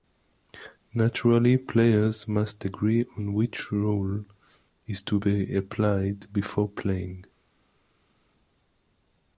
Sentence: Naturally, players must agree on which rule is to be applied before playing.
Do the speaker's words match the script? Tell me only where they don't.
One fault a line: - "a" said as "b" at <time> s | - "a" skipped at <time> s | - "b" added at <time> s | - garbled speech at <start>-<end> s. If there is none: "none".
none